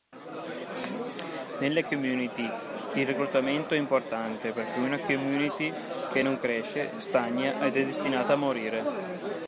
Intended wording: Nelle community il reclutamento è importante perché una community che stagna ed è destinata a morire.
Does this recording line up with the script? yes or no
no